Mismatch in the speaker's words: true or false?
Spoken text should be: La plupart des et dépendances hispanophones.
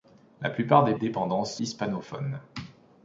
false